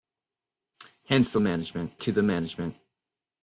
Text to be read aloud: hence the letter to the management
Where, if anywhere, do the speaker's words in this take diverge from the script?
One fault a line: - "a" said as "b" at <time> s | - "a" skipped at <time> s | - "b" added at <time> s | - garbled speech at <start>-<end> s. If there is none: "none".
- "letter" said as "management" at 1.4 s